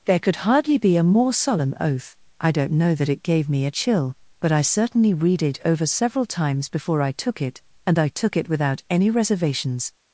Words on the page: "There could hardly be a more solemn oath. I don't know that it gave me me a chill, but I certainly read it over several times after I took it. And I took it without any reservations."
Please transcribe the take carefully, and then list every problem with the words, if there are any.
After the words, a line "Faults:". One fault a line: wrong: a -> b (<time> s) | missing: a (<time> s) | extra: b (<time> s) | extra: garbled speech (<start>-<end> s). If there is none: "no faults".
"There could hardly be a more solemn oath. I don't know that it gave me a chill, but I certainly read it over several times before I took it. And I took it without any reservations."
Faults:
missing: me (3.6 s)
wrong: after -> before (6.7 s)